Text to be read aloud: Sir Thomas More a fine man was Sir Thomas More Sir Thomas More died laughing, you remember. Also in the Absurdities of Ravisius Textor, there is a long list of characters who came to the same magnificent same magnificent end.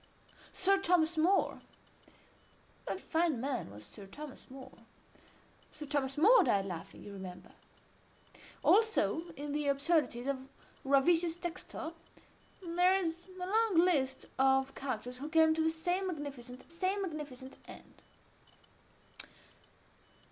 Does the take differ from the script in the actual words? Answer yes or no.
no